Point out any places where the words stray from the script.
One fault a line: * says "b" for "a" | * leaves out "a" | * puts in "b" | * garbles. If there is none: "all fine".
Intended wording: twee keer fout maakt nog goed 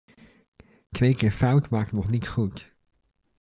* puts in "niet"